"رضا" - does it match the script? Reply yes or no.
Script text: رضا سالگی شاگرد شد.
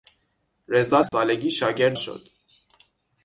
yes